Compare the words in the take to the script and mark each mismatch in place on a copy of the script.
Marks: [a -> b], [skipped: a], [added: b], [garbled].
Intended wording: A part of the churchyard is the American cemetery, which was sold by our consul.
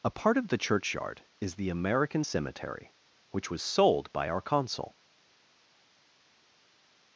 A part of the churchyard is the American cemetery, which was sold by our consul.